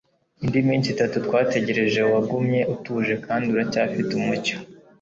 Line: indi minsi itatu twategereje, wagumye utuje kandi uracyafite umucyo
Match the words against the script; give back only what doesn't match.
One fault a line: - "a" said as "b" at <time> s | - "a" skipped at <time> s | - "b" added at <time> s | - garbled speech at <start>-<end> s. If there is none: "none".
none